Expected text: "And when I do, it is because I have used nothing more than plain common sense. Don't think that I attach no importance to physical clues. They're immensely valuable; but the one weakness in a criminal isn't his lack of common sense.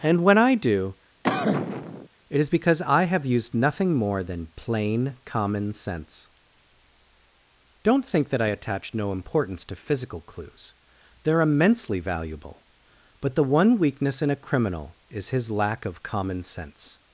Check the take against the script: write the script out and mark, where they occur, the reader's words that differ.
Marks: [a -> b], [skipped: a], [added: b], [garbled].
"And when I do, it is because I have used nothing more than plain common sense. Don't think that I attach no importance to physical clues. They're immensely valuable; but the one weakness in a criminal [isn't -> is] his lack of common sense.